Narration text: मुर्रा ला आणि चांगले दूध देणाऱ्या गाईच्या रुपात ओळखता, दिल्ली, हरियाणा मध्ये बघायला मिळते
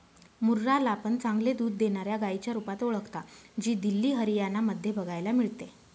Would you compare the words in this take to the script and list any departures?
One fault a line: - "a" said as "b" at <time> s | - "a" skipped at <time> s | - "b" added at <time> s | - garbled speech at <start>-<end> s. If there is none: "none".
- "आणि" said as "पण" at 0.9 s
- "जी" added at 3.6 s